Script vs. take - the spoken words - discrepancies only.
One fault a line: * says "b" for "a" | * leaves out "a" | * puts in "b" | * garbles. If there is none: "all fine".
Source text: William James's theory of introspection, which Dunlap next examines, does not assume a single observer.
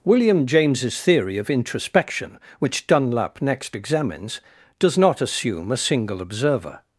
all fine